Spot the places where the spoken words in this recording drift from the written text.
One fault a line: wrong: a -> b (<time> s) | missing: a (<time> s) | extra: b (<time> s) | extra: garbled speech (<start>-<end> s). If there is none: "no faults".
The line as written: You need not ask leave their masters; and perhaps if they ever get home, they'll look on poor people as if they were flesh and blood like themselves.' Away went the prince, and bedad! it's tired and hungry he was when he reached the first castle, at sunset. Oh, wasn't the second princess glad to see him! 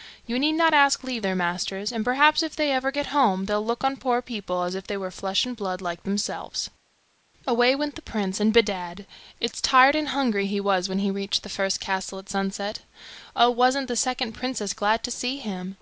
no faults